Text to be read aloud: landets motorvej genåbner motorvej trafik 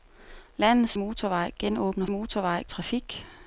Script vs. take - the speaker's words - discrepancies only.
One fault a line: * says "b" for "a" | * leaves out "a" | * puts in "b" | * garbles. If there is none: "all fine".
all fine